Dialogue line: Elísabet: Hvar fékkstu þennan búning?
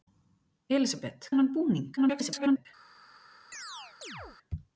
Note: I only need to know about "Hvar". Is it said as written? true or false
false